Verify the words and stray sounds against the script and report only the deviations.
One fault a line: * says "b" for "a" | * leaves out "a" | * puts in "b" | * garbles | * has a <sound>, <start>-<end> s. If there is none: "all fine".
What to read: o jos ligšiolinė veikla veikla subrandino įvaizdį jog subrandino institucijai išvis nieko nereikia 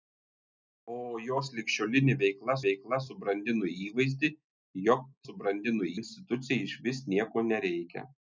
all fine